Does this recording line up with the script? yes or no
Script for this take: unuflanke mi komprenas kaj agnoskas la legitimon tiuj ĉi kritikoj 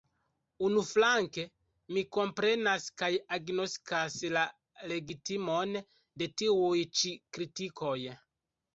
no